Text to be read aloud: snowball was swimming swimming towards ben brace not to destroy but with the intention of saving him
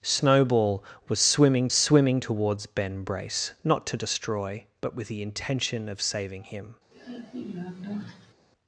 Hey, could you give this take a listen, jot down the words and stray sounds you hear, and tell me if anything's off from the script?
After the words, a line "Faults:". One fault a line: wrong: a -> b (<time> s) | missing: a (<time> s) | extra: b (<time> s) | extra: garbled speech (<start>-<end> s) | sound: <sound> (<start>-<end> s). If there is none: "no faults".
snowball was swimming swimming towards ben brace not to destroy but with the intention of saving him
Faults:
sound: sigh (6.9-8.3 s)